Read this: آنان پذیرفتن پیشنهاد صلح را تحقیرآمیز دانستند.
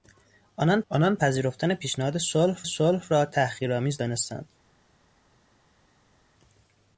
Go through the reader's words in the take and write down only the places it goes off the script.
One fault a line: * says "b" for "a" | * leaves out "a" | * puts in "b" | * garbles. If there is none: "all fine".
* puts in "آنان"
* puts in "صلح"